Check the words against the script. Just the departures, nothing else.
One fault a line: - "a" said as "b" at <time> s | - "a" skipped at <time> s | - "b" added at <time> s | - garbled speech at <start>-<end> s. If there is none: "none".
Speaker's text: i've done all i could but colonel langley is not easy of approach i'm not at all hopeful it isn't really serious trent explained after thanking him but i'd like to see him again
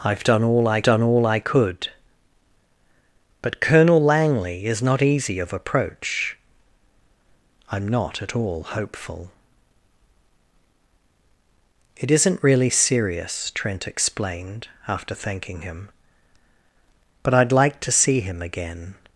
- "done all i" added at 0.8 s